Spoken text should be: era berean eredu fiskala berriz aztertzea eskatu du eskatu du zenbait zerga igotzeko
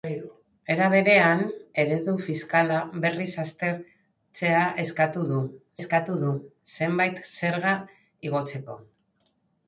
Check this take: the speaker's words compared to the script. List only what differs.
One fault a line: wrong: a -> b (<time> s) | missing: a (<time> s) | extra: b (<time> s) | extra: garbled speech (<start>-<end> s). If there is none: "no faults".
no faults